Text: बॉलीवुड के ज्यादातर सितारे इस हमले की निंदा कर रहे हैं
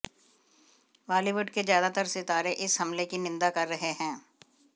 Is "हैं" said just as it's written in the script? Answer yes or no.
yes